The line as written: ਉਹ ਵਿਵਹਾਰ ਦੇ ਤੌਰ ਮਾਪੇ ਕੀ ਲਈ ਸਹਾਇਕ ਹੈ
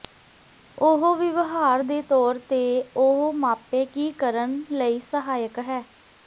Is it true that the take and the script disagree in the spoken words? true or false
true